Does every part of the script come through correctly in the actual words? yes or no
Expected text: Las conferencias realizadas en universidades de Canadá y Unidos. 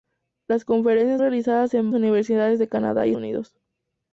yes